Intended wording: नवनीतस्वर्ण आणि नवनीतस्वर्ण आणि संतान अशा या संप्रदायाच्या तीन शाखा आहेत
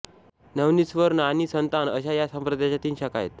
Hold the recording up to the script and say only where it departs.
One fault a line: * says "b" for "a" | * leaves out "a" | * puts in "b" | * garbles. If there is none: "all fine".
* leaves out "नवनीतस्वर्ण आणि"